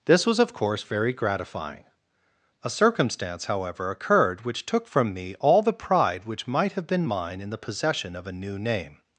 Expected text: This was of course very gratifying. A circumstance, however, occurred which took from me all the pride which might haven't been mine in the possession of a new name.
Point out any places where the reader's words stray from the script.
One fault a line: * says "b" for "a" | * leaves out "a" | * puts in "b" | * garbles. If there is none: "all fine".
* says "have" for "haven't"